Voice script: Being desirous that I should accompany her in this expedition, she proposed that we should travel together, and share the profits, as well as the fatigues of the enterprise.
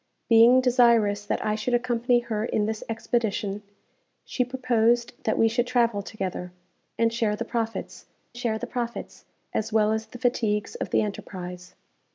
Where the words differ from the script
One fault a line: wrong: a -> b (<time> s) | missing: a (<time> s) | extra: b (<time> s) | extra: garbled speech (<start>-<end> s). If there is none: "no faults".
extra: share the profits (8.4 s)